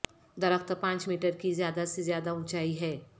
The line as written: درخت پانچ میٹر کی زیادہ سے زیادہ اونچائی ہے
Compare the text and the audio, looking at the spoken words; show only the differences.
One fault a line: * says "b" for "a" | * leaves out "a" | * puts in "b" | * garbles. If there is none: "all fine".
all fine